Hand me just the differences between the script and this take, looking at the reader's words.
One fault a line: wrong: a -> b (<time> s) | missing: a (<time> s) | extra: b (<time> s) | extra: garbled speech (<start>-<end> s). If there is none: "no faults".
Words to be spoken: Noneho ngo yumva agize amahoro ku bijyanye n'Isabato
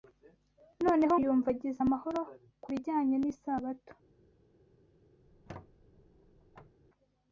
missing: ngo (1.1 s)